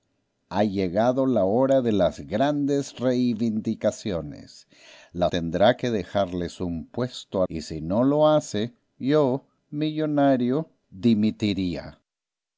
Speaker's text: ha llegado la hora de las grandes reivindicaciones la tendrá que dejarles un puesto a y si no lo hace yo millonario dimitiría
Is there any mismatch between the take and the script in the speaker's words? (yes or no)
no